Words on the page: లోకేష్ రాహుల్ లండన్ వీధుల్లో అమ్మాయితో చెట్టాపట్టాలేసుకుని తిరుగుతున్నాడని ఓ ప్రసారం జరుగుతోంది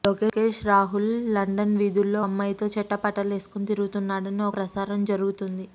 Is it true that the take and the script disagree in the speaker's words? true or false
false